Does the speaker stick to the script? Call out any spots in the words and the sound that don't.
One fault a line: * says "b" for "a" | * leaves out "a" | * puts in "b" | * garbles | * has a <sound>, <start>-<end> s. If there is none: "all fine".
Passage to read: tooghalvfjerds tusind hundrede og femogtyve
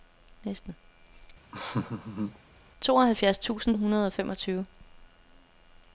* has a laugh, 1.5-2.4 s